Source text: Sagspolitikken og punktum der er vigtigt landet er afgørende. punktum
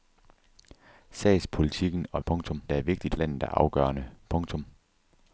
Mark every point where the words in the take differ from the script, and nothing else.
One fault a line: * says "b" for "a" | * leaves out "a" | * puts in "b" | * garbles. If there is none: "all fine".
all fine